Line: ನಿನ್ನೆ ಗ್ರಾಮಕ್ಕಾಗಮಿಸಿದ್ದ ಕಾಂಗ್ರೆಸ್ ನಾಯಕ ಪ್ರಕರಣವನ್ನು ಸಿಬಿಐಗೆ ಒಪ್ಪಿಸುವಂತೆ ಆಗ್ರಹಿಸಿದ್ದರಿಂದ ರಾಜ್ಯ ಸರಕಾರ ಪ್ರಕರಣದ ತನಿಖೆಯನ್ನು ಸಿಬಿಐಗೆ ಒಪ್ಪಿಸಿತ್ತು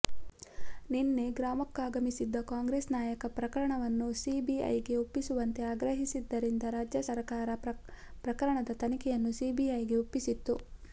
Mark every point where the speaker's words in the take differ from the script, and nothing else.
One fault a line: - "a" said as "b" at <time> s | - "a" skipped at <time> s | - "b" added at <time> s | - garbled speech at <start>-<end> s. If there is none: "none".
none